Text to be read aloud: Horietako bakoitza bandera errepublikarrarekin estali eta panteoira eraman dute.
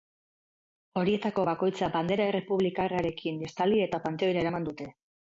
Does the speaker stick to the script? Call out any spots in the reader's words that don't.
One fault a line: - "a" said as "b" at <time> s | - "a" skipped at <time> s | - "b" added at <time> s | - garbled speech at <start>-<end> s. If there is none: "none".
none